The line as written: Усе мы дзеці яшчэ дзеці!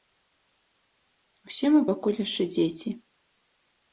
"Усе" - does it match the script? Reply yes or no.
yes